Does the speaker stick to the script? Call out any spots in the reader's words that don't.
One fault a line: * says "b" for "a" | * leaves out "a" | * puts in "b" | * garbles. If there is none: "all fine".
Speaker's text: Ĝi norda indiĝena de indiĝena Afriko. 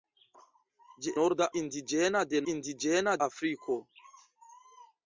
all fine